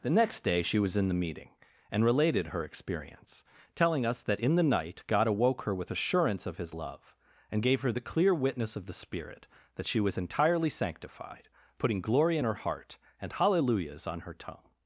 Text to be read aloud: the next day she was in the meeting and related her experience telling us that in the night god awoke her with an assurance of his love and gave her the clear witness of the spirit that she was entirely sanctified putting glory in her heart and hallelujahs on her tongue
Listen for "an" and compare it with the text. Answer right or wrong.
wrong